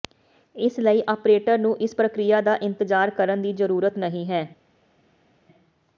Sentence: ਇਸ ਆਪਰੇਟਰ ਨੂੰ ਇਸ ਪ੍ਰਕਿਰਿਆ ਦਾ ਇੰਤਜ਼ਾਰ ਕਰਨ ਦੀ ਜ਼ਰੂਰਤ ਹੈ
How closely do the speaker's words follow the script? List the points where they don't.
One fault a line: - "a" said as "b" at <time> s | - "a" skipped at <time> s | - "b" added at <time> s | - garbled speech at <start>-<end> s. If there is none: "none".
- "ਲਈ" added at 0.8 s
- "ਨਹੀਂ" added at 4.0 s